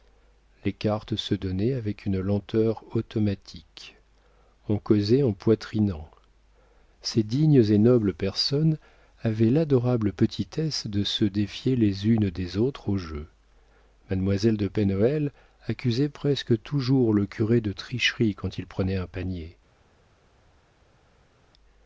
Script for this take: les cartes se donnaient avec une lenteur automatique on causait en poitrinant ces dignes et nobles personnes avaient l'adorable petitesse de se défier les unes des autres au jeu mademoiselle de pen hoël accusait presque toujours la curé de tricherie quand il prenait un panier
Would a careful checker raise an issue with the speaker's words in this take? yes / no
yes